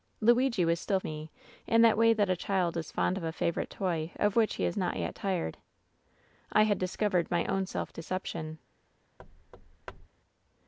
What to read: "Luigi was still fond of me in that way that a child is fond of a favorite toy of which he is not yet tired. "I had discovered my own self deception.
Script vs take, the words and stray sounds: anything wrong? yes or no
yes